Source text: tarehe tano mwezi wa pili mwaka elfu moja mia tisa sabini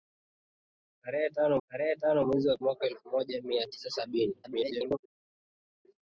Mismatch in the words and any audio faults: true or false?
true